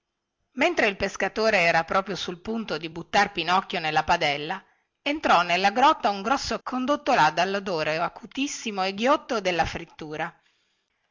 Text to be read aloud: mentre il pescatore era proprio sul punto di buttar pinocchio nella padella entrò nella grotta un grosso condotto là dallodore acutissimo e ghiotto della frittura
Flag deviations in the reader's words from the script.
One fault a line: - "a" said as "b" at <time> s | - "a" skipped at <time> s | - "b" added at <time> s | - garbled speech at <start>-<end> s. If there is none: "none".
none